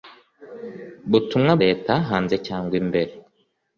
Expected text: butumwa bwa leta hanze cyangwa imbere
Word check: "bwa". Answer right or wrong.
wrong